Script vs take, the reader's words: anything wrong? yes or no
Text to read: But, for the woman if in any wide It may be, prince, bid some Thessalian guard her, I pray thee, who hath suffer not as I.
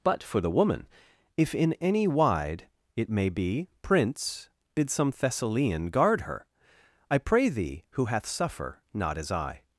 no